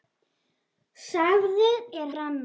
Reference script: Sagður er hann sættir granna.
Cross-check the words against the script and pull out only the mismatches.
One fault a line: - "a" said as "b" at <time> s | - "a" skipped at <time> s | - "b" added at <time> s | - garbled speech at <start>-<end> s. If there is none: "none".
- "hann sættir" skipped at 2.1 s